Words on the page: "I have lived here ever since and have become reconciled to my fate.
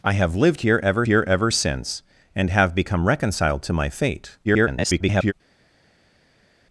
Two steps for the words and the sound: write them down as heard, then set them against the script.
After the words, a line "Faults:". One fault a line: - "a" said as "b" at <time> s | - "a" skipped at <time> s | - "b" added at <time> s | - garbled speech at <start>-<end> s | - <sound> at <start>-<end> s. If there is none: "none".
"I have lived here ever here ever since and have become reconciled to my fate. [garbled]
Faults:
- "here ever" added at 1.0 s
- garbled speech at 4.4-5.3 s